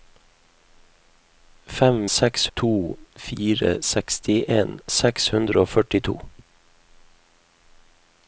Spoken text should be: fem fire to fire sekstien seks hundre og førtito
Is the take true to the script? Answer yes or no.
no